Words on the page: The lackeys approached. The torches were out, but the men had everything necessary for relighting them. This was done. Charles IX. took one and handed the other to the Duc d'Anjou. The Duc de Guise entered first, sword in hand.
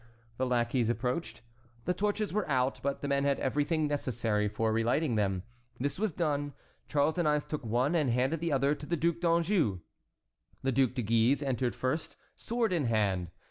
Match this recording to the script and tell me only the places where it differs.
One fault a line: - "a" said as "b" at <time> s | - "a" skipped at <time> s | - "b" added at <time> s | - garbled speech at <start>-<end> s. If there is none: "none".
none